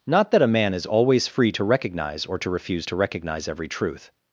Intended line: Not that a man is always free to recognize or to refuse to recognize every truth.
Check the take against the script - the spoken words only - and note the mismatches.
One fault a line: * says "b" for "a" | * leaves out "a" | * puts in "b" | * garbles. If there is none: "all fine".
all fine